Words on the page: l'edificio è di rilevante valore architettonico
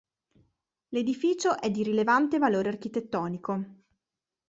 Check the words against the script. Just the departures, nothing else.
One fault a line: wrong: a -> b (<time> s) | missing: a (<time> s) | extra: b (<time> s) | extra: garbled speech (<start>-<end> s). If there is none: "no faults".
no faults